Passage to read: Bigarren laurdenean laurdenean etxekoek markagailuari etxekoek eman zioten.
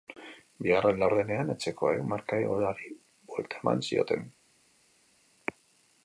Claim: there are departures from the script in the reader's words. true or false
true